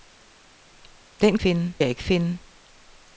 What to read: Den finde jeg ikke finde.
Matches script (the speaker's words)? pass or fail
pass